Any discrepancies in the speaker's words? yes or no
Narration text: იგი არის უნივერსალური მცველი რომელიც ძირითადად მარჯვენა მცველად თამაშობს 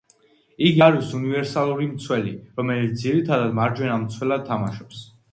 no